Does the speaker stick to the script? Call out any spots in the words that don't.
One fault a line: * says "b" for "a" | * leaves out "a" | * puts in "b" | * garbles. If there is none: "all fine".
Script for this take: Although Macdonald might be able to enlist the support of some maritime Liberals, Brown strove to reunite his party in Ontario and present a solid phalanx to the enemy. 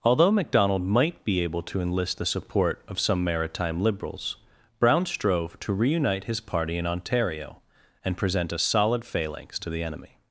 all fine